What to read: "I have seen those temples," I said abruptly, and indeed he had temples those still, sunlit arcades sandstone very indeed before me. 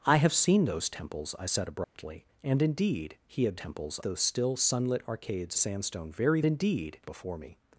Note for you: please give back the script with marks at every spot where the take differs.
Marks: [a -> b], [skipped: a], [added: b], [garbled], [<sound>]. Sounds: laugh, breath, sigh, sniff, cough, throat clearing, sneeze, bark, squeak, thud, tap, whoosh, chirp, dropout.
"I have seen those temples," I said abruptly, [dropout] and indeed he had temples those still, sunlit arcades sandstone very indeed before me.